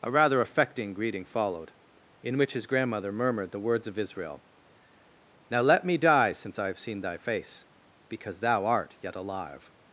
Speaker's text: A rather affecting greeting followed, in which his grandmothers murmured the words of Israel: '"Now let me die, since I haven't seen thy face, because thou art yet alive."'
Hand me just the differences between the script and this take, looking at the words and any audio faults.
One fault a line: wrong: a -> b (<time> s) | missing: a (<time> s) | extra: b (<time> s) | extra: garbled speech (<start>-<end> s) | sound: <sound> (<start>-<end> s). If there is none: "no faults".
wrong: grandmothers -> grandmother (2.6 s)
wrong: haven't -> have (6.7 s)